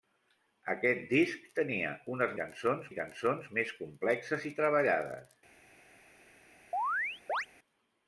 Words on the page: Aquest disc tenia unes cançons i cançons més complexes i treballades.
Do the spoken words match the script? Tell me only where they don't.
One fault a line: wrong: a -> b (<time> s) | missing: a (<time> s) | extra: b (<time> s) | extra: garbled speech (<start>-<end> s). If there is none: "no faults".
no faults